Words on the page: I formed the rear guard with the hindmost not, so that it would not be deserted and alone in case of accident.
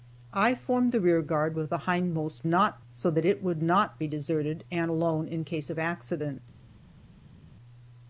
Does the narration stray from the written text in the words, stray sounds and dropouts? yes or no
no